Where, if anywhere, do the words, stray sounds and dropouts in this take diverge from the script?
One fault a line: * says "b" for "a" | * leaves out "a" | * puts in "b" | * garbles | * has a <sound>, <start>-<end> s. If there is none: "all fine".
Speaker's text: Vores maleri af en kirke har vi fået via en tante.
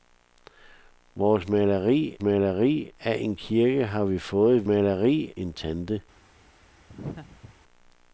* puts in "maleri"
* says "maleri" for "via"
* has a laugh, 6.9-7.5 s